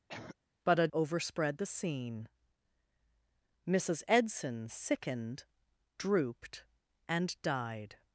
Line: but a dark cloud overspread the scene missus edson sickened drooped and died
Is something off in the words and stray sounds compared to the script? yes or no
yes